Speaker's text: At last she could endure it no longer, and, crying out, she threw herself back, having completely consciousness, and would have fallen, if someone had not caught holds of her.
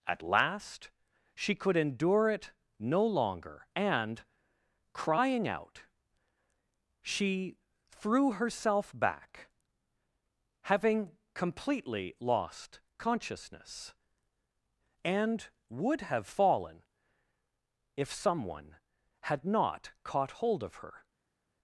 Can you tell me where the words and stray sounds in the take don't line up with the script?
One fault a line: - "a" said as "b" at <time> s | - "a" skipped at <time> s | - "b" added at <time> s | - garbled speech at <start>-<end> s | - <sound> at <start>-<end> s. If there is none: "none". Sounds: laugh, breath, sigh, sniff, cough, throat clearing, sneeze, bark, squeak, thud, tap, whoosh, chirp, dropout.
- "lost" added at 12.2 s
- "holds" said as "hold" at 20.4 s